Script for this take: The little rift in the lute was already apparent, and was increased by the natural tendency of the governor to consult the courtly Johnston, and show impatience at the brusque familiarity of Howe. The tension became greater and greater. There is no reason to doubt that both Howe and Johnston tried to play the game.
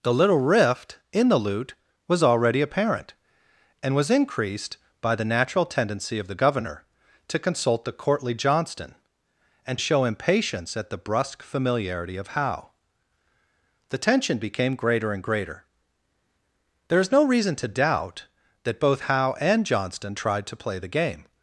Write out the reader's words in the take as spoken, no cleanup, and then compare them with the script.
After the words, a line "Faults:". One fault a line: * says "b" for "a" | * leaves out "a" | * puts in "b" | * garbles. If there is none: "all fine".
The little rift in the lute was already apparent, and was increased by the natural tendency of the governor to consult the courtly Johnston, and show impatience at the brusque familiarity of Howe. The tension became greater and greater. There is no reason to doubt that both Howe and Johnston tried to play the game.
Faults:
all fine